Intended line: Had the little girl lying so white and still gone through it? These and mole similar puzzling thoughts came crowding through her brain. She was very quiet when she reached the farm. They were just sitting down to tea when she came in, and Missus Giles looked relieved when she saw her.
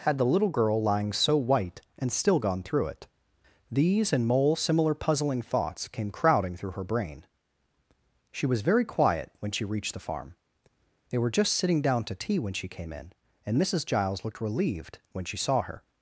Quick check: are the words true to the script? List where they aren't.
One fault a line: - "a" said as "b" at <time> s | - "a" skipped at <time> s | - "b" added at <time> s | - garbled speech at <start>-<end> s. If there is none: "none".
none